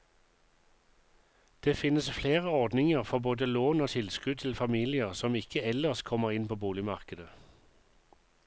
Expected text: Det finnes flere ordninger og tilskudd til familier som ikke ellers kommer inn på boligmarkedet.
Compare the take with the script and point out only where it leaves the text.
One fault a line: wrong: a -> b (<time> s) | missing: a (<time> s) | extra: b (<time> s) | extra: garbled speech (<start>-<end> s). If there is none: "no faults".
extra: for både lån (3.0 s)